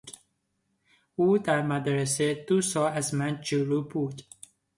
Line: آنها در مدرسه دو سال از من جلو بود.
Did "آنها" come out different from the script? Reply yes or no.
yes